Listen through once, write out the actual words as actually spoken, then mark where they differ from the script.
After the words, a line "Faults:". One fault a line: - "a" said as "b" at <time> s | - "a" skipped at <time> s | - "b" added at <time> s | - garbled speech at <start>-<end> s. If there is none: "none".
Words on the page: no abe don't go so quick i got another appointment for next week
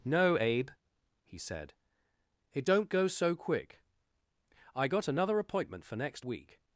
no abe he said it don't go so quick i got another appointment for next week
Faults:
- "he said it" added at 1.2 s